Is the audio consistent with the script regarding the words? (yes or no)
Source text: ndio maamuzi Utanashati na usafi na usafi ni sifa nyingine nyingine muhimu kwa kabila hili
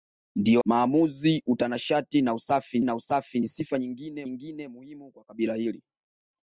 yes